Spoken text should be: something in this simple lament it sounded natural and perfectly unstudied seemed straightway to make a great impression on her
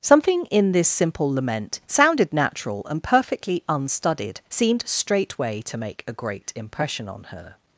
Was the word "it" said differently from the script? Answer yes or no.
yes